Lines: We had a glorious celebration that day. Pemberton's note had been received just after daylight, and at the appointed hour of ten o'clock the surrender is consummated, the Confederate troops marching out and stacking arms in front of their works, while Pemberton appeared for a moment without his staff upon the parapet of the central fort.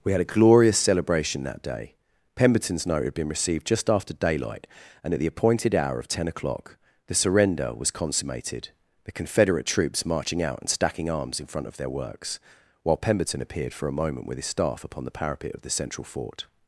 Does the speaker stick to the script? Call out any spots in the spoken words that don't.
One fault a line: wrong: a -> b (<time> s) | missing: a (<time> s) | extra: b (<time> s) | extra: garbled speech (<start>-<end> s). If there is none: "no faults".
wrong: is -> was (7.7 s)
wrong: without -> with (14.3 s)